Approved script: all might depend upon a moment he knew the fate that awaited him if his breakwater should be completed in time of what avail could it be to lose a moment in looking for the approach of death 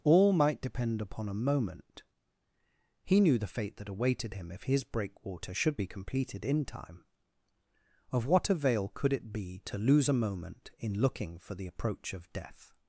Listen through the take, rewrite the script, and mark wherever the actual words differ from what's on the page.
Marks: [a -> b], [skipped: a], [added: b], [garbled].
all might depend upon a moment he knew the fate that awaited him if his breakwater should be completed in time of what avail could it be to lose a moment in looking for the approach of death